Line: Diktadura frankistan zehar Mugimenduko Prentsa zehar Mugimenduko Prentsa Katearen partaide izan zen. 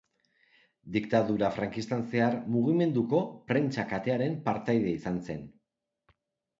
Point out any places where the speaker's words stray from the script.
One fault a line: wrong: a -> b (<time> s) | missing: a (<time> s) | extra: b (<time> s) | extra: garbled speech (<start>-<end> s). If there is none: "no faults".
missing: zehar Mugimenduko Prentsa (3.9 s)